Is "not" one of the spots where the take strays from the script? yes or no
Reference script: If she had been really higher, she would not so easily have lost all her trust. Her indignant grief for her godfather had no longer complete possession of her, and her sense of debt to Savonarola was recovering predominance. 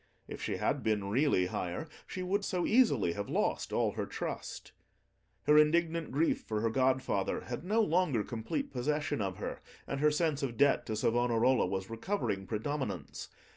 yes